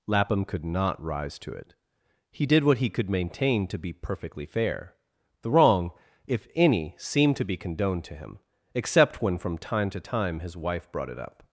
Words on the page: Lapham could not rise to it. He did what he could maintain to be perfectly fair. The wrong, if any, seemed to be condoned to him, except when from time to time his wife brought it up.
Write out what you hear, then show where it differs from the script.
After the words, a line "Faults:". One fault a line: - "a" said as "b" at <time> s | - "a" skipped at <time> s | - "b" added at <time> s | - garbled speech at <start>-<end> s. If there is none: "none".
Lapham could not rise to it. He did what he could maintain to be perfectly fair. The wrong, if any, seemed to be condoned to him, except when from time to time his wife brought it up.
Faults:
none